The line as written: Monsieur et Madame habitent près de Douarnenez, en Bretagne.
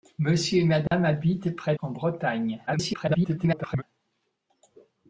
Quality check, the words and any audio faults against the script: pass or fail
fail